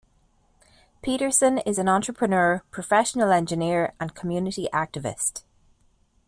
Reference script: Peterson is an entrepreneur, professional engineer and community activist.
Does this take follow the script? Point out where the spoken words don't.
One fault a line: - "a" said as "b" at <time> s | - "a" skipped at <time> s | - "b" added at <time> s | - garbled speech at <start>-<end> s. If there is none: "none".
none